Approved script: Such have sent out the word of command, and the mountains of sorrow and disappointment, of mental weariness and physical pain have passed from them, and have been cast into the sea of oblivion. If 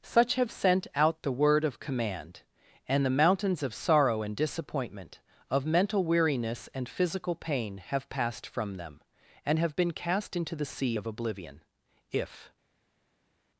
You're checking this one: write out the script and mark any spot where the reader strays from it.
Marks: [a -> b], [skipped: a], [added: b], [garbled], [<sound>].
Such have sent out the word of command, and the mountains of sorrow and disappointment, of mental weariness and physical pain have passed from them, and have been cast into the sea of oblivion. If